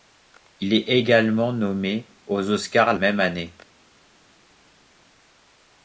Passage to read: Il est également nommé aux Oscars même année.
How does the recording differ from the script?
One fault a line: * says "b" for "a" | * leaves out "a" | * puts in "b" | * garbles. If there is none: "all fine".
all fine